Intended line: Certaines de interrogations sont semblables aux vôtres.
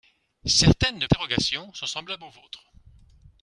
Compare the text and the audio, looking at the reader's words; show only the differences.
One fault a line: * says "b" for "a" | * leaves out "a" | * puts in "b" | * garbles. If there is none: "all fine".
all fine